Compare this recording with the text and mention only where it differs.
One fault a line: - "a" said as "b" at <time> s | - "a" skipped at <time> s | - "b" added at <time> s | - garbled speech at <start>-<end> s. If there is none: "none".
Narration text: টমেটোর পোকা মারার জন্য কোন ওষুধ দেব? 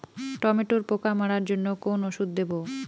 none